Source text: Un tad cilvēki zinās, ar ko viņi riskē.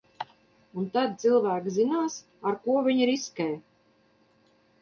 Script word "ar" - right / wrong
right